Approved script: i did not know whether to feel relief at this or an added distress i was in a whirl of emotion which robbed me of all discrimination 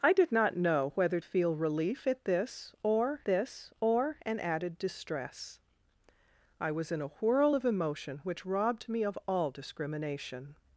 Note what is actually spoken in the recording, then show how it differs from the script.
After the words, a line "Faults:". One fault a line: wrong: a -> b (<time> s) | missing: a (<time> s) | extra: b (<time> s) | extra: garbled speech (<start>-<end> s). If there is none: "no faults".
i did not know whether feel relief at this or this or an added distress i was in a whirl of emotion which robbed me of all discrimination
Faults:
missing: to (1.2 s)
extra: this or (3.2 s)